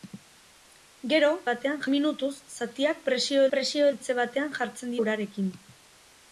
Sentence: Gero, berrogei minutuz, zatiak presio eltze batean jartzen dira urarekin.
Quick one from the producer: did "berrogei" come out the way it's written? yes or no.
no